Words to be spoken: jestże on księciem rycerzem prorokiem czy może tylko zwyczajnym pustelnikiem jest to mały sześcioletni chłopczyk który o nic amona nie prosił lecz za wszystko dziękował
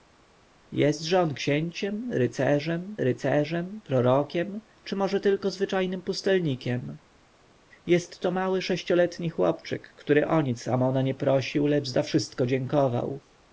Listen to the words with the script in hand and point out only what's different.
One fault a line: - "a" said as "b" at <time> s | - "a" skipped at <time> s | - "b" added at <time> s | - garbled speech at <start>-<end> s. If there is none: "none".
- "rycerzem" added at 3.0 s